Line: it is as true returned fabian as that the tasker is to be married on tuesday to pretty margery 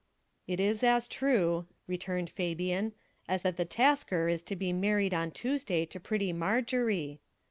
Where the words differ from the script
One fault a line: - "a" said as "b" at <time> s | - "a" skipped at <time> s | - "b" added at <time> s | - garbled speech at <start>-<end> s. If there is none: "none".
none